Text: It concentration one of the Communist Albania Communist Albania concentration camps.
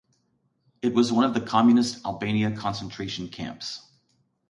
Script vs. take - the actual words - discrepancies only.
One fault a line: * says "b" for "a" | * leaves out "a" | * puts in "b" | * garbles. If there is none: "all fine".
* says "was" for "concentration"
* leaves out "Communist Albania"